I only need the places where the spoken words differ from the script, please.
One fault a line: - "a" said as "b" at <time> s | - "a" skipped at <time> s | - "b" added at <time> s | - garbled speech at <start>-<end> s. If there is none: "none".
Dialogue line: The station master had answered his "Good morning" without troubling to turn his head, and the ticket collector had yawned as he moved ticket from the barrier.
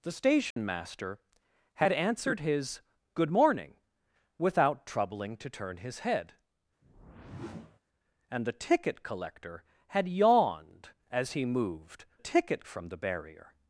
none